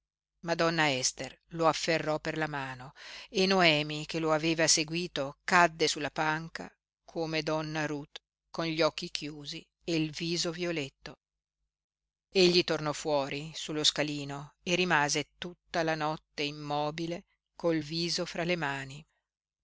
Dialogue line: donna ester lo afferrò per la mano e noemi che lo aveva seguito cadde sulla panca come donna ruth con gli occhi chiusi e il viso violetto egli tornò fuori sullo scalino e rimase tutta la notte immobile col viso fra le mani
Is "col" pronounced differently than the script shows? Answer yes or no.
no